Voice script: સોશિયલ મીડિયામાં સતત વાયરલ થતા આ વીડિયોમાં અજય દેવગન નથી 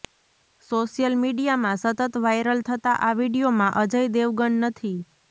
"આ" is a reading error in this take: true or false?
false